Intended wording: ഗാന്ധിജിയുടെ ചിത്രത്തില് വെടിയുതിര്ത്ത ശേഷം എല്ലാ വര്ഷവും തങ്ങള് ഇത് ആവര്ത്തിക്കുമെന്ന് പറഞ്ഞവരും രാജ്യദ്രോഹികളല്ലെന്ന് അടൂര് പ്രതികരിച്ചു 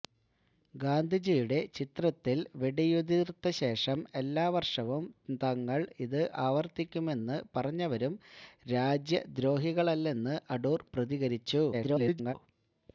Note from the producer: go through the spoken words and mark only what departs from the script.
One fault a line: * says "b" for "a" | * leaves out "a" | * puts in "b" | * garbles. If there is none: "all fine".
* garbles